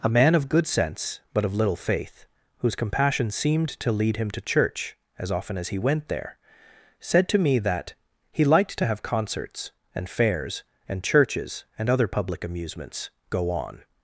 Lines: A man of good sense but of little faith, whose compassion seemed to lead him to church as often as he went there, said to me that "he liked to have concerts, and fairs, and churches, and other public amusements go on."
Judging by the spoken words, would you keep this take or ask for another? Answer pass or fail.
pass